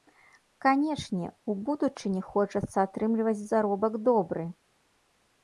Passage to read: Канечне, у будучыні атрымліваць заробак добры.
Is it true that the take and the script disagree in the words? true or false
true